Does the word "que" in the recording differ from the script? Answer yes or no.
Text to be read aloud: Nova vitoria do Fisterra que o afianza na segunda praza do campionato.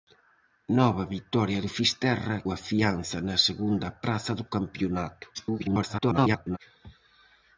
yes